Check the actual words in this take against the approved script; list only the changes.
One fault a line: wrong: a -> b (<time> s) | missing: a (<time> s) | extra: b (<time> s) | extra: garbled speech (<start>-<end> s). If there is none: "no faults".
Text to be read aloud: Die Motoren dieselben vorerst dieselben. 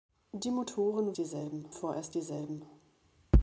no faults